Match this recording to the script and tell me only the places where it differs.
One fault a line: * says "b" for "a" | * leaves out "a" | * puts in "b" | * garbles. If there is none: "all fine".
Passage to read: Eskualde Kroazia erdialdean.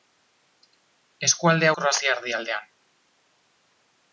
all fine